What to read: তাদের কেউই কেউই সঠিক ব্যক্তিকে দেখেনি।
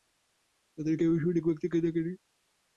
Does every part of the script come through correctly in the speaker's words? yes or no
no